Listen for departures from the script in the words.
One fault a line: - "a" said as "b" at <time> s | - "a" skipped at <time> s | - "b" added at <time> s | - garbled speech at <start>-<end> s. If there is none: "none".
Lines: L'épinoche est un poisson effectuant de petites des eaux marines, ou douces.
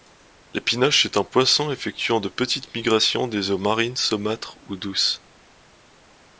- "migrations" added at 2.7 s
- "saumâtres" added at 4.0 s